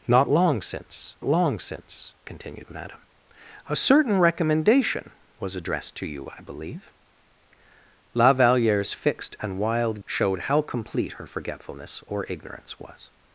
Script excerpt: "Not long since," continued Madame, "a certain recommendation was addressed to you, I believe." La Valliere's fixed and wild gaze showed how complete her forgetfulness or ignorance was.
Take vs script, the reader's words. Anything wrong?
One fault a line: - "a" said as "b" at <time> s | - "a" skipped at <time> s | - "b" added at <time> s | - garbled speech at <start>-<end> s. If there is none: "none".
- "long since" added at 1.2 s
- "gaze" skipped at 10.0 s